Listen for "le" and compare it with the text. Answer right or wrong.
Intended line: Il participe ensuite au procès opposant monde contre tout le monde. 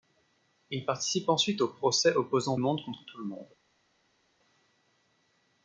right